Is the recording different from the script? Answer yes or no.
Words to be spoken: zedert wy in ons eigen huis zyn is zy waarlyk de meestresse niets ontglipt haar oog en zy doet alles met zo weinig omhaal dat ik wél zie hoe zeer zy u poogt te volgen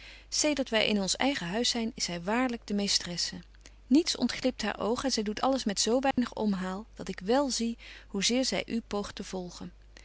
no